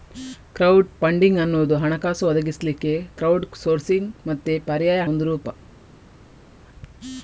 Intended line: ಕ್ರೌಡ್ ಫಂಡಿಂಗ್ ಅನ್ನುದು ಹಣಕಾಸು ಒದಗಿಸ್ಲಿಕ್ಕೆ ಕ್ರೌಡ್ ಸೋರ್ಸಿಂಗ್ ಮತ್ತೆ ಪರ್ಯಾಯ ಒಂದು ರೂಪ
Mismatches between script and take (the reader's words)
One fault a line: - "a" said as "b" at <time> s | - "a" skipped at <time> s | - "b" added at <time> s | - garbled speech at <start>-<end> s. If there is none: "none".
none